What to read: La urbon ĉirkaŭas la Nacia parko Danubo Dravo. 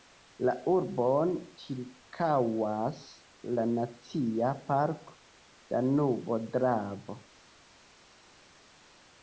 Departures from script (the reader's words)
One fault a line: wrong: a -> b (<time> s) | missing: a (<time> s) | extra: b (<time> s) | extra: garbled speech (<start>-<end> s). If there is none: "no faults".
no faults